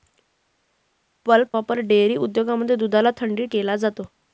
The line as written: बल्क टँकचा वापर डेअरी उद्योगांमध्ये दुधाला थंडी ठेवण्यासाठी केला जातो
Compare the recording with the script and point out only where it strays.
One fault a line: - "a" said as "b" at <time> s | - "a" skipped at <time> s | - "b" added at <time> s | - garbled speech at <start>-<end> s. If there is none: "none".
- "टँकचा" skipped at 1.5 s
- "ठेवण्यासाठी" skipped at 3.5 s